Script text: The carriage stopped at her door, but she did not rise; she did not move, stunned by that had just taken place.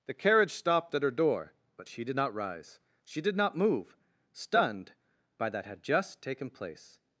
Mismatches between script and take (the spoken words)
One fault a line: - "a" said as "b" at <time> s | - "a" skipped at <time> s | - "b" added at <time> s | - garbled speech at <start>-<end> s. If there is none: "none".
none